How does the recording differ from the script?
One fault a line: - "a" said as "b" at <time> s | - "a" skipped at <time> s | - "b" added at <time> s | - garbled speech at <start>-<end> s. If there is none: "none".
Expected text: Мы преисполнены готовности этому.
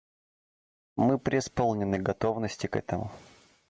- "к" added at 2.7 s